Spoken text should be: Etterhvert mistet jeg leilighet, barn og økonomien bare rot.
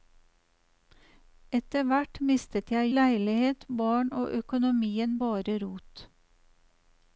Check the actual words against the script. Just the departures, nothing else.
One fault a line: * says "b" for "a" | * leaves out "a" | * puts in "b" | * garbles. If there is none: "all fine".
all fine